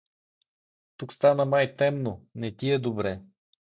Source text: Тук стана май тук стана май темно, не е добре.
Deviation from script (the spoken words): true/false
true